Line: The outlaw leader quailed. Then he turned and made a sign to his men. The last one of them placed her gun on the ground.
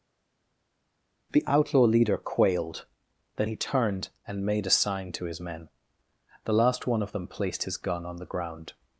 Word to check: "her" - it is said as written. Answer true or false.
false